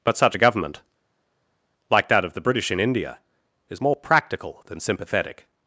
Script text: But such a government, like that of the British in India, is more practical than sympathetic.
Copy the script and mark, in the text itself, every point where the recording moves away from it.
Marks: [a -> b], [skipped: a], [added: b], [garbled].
But such a government, like that of the British in India, is more practical than sympathetic.